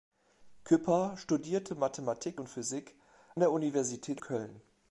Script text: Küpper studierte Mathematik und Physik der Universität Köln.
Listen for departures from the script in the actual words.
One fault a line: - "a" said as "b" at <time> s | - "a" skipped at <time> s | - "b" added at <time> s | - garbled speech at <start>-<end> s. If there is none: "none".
none